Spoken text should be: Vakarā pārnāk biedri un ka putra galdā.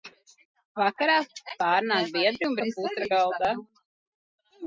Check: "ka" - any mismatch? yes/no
no